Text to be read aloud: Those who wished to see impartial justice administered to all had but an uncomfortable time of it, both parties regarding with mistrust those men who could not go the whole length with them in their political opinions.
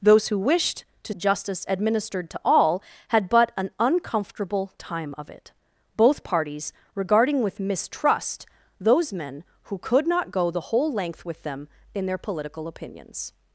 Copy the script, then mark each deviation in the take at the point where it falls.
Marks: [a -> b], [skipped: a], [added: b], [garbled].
Those who wished to [skipped: see impartial] justice administered to all had but an uncomfortable time of it, both parties regarding with mistrust those men who could not go the whole length with them in their political opinions.